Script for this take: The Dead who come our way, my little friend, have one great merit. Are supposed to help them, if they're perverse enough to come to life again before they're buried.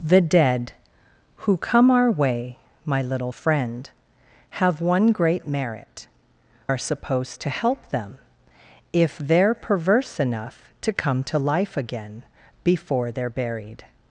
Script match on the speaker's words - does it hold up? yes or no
yes